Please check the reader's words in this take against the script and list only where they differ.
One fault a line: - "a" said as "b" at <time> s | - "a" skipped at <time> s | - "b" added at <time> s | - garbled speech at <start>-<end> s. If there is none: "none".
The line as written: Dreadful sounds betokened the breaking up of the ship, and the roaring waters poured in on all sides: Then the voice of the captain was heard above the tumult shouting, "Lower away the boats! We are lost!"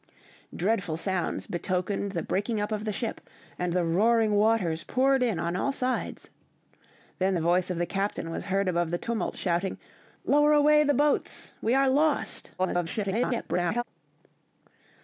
- garbled speech at 12.6-13.8 s